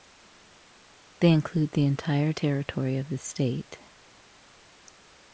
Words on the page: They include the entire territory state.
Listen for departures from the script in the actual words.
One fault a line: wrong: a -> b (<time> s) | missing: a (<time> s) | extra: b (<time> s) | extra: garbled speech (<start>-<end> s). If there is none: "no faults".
extra: of the (3.0 s)